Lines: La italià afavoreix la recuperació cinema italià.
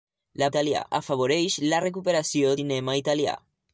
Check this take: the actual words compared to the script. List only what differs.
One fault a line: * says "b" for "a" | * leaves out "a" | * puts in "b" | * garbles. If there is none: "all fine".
all fine